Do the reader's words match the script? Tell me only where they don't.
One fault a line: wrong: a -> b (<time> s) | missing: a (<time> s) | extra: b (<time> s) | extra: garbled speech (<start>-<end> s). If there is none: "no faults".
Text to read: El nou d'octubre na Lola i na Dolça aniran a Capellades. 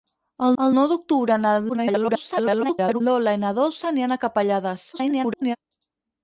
extra: el (0.6 s)
extra: garbled speech (1.7-3.0 s)
extra: garbled speech (4.9-5.6 s)